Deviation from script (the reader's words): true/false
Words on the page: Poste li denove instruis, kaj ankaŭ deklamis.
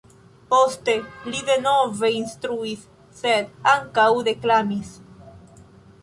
true